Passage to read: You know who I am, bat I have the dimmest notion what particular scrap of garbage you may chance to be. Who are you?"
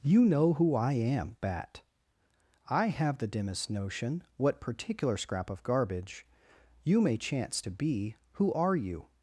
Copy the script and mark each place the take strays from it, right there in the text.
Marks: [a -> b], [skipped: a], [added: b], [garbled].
You know who I am, bat I have the dimmest notion what particular scrap of garbage you may chance to be. Who are you?"